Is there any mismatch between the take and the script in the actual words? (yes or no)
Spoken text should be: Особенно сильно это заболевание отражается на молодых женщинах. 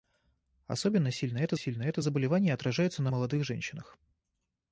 yes